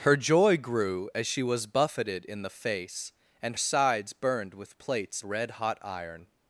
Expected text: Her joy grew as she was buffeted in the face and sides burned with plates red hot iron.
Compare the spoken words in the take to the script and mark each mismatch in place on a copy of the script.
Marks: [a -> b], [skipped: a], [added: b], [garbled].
Her joy grew as she was buffeted in the face and sides burned with plates red hot iron.